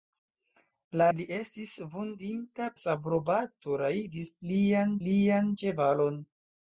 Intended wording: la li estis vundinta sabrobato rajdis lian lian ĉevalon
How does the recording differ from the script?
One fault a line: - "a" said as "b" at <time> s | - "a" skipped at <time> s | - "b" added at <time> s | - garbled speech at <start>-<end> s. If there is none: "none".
none